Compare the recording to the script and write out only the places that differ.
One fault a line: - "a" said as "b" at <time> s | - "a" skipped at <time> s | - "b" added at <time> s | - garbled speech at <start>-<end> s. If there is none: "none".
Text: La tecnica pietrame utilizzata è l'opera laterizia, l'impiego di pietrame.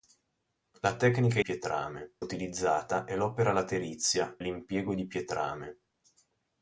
none